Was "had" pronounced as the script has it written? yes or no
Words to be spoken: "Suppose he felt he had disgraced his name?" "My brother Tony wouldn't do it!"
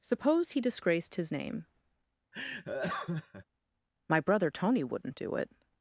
no